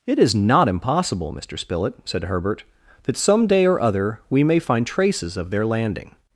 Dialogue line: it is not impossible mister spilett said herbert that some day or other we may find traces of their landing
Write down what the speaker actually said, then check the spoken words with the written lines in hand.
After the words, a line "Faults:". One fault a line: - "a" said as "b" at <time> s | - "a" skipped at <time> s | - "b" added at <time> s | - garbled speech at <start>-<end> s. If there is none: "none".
it is not impossible mister spilett said herbert that some day or other we may find traces of their landing
Faults:
none